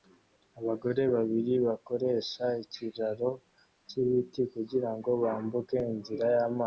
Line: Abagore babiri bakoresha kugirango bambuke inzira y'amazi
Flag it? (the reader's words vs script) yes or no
yes